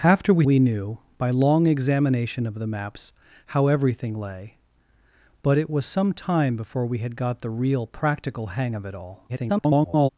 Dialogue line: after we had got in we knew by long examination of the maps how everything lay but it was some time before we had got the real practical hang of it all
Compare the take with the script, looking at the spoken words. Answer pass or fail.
fail